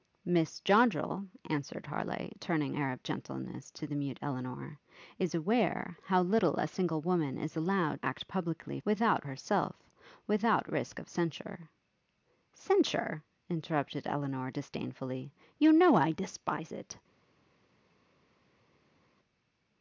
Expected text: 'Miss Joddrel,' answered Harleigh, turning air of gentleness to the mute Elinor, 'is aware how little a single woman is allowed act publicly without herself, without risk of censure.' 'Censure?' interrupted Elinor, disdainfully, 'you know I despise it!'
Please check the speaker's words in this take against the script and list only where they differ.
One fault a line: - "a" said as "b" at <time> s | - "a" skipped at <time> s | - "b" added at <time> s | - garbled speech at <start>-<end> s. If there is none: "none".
none